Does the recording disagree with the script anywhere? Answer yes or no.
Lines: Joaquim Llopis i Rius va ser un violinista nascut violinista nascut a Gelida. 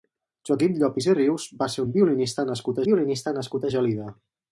no